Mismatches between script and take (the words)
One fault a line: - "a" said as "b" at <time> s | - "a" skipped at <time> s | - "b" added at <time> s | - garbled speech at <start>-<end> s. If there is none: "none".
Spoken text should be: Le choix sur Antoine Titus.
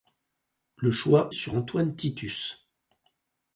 none